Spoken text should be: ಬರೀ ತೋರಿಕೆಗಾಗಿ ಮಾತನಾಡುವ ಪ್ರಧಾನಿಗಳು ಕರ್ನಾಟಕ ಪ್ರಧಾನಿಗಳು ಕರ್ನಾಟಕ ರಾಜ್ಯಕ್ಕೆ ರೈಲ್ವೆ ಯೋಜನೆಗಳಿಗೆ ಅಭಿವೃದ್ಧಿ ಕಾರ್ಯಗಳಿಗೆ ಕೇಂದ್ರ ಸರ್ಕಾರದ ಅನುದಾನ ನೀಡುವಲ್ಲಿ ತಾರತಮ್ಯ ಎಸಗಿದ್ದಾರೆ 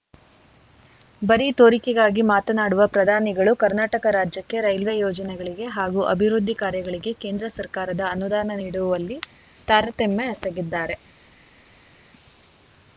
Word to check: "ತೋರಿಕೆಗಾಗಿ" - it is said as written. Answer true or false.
true